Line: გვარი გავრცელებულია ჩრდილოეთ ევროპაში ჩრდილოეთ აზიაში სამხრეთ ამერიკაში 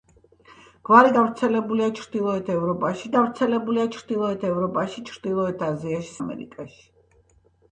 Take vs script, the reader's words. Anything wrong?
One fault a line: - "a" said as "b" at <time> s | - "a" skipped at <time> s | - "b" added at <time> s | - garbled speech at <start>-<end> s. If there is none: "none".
- "გავრცელებულია" added at 3.1 s
- "ევროპაში ჩრდილოეთ" added at 4.5 s
- "სამხრეთ" skipped at 6.2 s